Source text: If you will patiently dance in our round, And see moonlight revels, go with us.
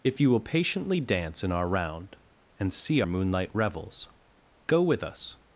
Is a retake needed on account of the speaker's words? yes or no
no